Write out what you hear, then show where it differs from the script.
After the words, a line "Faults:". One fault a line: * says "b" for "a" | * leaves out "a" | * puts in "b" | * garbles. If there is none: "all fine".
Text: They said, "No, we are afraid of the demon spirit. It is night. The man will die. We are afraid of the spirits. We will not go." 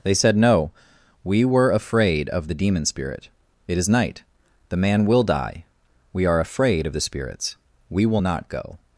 They said, "No, we were afraid of the demon spirit. It is night. The man will die. We are afraid of the spirits. We will not go."
Faults:
* says "were" for "are"